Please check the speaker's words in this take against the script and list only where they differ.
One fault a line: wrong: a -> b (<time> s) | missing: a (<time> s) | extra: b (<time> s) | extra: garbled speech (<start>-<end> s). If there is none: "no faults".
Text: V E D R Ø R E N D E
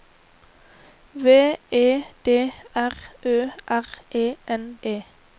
missing: D (4.6 s)